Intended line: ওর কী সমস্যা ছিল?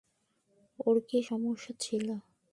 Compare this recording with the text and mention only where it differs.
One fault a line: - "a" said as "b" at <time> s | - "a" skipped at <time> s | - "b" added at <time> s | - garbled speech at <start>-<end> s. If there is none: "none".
none